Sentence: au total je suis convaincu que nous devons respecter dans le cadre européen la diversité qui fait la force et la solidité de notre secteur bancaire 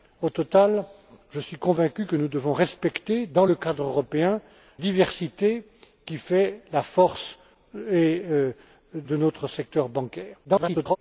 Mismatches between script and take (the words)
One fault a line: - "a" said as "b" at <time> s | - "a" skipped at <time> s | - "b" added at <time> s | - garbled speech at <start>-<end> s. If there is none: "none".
- "la" skipped at 4.4 s
- "la solidité" skipped at 8.2 s
- garbled speech at 10.4-11.0 s